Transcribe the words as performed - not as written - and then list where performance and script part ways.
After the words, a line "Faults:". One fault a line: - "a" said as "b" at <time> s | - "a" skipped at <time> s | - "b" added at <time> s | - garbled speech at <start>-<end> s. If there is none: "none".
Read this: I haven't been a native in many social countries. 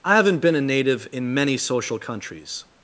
I haven't been a native in many social countries.
Faults:
none